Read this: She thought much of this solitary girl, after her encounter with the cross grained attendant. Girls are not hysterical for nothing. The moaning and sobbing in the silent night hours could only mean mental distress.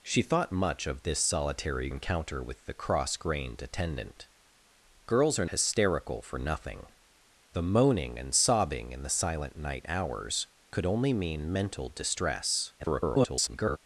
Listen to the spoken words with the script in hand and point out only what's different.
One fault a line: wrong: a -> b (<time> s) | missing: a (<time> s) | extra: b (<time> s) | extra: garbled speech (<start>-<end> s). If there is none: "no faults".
missing: girl after her (1.9 s)
missing: not (5.5 s)
extra: garbled speech (12.8-13.8 s)